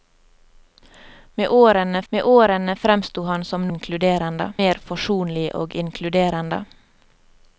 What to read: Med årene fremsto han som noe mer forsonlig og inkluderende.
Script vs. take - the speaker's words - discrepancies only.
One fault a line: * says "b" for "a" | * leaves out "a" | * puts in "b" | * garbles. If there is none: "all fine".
* puts in "med årene"
* says "inkluderende" for "noe"